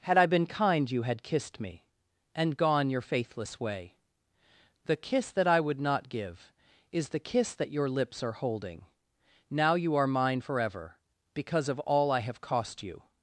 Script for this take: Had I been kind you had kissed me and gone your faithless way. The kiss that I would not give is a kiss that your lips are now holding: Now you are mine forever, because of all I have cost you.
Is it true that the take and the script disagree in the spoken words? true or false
true